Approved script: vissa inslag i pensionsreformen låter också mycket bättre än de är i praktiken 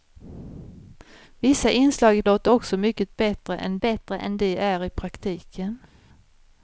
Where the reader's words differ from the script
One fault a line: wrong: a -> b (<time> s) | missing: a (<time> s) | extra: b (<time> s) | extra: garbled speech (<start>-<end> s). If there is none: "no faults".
missing: pensionsreformen (2.2 s)
extra: bättre än (3.8 s)